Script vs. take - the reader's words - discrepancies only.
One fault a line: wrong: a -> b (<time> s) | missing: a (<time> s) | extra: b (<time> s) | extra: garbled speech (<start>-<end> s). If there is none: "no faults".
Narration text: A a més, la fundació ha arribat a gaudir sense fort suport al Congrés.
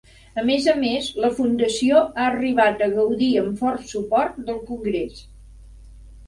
extra: més (0.5 s)
wrong: sense -> amb (3.4 s)
wrong: al -> del (4.5 s)